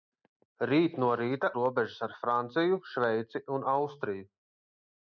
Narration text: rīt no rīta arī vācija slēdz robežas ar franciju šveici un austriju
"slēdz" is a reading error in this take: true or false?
true